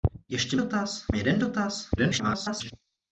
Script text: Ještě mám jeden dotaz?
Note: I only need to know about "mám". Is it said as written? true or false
false